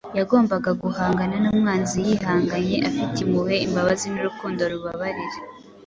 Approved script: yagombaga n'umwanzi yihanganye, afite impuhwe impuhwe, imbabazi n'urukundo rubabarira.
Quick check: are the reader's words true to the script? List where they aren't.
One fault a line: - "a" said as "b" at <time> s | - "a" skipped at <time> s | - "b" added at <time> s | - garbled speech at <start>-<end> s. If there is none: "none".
- "guhangana" added at 0.8 s
- "impuhwe" skipped at 3.5 s